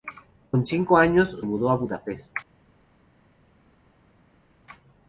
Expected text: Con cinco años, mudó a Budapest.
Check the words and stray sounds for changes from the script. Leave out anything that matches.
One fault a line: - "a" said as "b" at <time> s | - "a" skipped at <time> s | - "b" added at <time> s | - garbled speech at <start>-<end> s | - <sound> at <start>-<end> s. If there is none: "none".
none